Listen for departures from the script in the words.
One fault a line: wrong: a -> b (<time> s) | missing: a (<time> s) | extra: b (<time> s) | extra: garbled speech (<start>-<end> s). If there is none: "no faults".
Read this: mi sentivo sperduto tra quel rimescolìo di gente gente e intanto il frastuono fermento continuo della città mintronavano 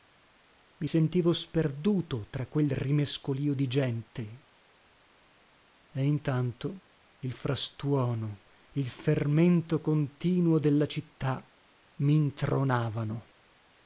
missing: gente (4.4 s)
extra: il (8.7 s)